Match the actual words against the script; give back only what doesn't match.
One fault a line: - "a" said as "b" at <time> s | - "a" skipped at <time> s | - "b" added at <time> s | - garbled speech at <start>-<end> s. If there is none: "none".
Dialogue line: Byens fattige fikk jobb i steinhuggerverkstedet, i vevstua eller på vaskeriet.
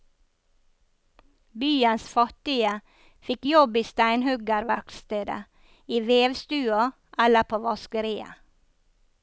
none